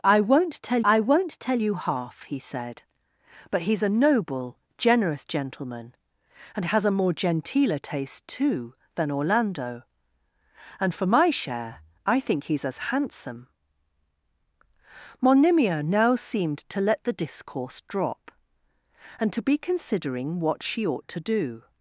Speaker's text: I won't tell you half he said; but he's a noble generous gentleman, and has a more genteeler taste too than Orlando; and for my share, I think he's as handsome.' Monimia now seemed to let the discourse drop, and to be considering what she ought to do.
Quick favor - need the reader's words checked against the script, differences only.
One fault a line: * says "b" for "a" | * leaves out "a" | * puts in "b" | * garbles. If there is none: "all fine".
* puts in "I won't tell"